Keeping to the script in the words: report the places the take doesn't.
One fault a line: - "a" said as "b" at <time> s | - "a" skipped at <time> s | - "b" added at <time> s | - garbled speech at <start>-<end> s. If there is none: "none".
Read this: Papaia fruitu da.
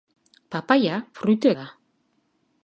none